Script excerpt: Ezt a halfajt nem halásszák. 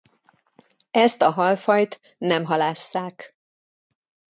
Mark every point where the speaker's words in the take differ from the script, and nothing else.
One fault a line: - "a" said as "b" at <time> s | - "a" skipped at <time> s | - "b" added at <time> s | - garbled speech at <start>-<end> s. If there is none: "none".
none